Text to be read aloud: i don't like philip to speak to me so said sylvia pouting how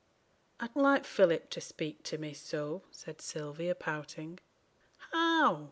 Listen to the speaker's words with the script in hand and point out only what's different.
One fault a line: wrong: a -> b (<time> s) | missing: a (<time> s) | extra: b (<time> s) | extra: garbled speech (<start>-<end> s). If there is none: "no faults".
missing: don't (0.7 s)